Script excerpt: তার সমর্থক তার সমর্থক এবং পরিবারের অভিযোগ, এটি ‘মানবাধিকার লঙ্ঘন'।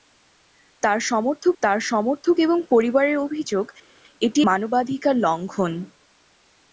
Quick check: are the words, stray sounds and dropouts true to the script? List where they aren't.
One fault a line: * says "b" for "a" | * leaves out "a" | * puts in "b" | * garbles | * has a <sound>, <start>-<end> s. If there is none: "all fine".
all fine